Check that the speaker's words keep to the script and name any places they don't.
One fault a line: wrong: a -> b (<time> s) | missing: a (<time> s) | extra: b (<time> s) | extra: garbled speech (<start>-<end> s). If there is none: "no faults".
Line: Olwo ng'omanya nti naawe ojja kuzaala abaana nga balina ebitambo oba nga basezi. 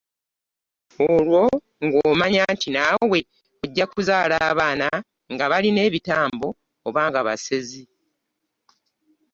no faults